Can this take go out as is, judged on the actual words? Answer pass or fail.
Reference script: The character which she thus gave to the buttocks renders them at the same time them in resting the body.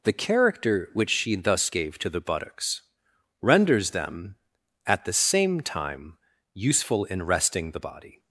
fail